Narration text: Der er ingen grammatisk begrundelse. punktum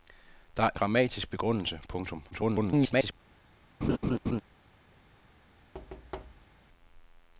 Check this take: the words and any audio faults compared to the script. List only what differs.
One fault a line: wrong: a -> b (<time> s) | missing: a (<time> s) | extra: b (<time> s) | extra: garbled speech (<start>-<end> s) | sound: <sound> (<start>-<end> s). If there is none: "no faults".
missing: ingen (0.7 s)
extra: garbled speech (2.3-3.1 s)
sound: laugh (3.8-4.4 s)
sound: thud (5.7-6.6 s)